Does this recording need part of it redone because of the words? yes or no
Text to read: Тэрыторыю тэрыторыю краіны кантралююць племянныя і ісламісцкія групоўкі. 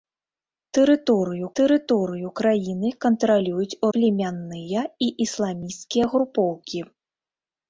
no